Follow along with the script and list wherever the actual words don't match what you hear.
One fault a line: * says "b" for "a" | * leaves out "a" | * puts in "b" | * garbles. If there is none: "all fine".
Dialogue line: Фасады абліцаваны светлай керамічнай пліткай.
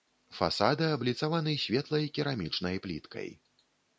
all fine